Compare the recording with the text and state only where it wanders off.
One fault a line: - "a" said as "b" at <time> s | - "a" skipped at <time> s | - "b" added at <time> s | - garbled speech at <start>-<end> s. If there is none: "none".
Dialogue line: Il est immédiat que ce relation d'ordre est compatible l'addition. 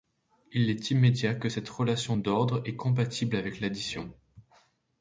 - "ce" said as "cette" at 1.4 s
- "avec" added at 3.4 s